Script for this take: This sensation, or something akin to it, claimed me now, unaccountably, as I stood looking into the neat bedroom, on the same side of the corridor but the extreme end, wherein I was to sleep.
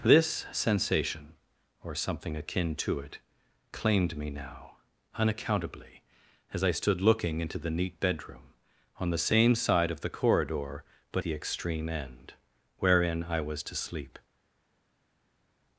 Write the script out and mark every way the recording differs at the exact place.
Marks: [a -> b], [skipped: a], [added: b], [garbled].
This sensation, or something akin to it, claimed me now, unaccountably, as I stood looking into the neat bedroom, on the same side of the corridor but the extreme end, wherein I was to sleep.